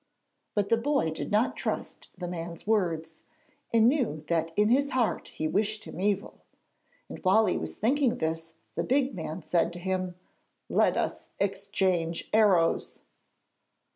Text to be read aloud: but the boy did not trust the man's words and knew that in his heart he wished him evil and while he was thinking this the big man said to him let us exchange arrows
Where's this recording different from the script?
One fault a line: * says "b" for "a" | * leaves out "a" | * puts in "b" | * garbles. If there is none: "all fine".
all fine